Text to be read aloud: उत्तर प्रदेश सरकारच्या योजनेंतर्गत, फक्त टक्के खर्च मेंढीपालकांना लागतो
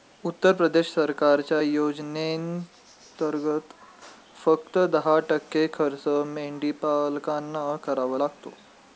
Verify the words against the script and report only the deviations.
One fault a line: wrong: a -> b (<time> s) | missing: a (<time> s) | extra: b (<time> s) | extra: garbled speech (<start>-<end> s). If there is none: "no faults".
extra: दहा (4.9 s)
extra: करावा (7.8 s)